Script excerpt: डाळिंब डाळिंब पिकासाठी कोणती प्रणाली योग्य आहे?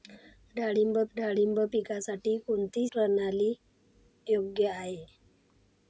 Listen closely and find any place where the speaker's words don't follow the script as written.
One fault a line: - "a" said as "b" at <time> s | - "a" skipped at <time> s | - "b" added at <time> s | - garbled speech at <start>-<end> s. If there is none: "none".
none